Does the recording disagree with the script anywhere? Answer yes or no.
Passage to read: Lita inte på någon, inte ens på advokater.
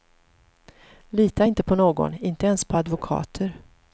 no